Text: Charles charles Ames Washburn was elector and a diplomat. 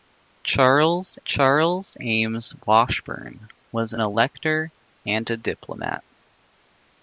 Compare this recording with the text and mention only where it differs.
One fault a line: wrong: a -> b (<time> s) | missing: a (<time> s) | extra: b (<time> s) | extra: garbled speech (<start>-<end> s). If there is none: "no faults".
no faults